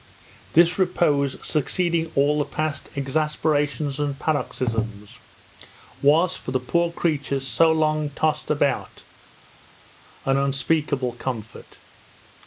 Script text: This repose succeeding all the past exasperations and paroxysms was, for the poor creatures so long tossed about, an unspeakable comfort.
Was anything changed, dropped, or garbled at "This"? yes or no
no